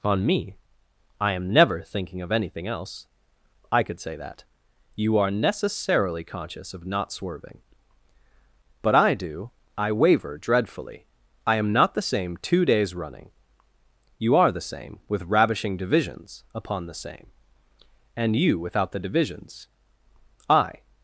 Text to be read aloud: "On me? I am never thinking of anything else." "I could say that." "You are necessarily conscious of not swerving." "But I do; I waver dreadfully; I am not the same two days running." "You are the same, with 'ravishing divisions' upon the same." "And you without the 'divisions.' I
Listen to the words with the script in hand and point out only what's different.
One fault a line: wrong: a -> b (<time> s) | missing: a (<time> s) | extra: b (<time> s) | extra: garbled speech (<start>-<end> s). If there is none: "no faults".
no faults